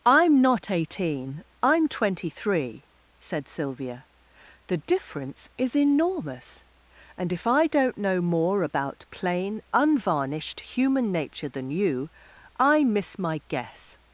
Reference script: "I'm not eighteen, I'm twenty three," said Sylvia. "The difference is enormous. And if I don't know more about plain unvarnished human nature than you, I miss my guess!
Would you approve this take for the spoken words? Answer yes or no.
yes